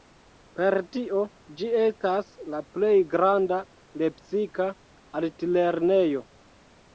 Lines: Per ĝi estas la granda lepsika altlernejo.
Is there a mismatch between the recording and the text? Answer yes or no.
yes